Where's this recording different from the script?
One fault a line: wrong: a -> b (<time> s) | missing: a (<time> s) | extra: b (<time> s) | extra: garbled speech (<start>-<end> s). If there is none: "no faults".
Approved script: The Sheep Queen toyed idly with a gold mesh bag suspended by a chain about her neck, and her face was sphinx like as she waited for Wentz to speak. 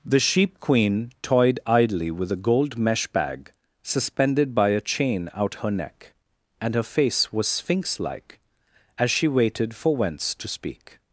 wrong: about -> out (5.3 s)